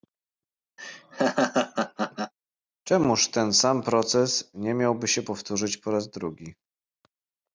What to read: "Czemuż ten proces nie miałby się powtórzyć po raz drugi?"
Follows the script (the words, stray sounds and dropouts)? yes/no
no